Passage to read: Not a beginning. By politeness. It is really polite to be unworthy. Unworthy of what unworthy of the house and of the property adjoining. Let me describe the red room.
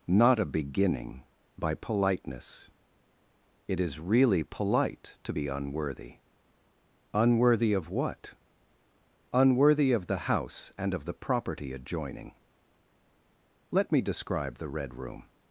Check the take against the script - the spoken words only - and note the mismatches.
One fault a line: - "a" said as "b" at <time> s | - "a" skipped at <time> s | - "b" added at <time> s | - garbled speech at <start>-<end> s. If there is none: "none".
none